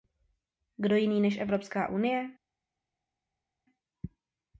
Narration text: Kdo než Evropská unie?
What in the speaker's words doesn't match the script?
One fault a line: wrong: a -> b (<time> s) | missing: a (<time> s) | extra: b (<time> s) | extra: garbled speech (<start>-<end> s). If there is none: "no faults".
extra: jiný (0.9 s)